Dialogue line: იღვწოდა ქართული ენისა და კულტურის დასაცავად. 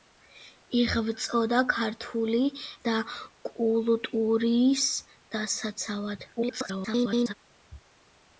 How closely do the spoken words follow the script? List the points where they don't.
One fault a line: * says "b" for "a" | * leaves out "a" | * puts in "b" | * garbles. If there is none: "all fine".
* leaves out "ენისა"
* garbles